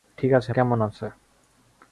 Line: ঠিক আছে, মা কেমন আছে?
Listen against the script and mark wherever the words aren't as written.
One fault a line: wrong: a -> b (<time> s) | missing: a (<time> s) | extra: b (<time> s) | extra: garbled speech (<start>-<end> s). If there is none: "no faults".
missing: মা (0.5 s)